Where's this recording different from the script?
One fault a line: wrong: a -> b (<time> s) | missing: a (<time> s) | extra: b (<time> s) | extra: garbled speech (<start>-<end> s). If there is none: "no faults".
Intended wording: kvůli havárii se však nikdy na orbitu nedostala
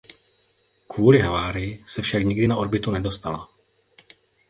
no faults